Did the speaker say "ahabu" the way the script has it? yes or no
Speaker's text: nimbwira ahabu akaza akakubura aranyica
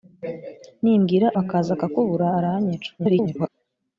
no